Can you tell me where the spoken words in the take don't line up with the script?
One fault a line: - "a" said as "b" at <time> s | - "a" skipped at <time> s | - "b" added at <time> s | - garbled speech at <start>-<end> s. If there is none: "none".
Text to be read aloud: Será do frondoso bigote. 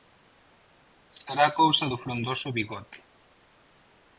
- "cousa" added at 1.6 s